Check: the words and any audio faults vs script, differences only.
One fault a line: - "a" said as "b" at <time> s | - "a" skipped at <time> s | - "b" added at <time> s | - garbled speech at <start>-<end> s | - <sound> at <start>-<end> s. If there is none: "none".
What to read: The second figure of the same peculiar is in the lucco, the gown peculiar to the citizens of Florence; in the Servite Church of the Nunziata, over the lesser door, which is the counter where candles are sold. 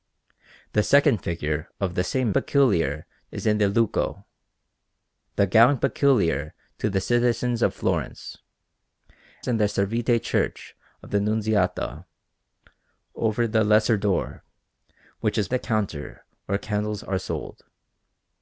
none